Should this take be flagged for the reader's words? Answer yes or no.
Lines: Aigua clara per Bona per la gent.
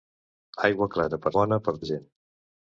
no